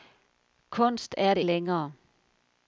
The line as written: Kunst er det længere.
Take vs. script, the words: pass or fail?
pass